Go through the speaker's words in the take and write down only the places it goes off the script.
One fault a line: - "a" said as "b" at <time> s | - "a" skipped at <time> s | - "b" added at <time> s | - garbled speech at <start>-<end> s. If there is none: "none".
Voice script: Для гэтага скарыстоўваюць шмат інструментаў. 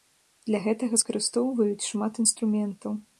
none